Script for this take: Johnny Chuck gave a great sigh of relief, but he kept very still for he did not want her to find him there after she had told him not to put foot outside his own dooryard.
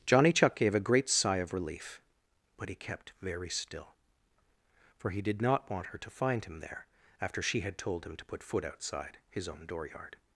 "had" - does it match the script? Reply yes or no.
yes